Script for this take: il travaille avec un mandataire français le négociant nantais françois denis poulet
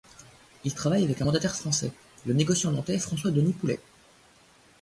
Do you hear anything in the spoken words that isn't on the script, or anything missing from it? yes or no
no